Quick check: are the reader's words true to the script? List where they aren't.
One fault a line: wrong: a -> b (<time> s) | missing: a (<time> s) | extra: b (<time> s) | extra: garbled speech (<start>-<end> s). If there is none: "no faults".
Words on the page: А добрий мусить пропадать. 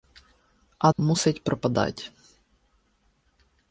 missing: добрий (0.9 s)